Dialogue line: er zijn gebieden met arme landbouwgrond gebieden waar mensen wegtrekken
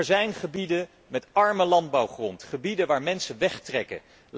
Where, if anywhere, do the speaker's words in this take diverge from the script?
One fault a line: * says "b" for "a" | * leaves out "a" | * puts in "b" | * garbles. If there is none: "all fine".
all fine